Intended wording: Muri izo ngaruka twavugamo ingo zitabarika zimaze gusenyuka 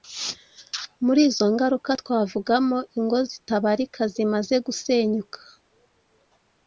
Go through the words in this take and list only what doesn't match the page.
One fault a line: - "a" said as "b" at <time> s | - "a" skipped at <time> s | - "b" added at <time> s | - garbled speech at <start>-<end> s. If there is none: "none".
none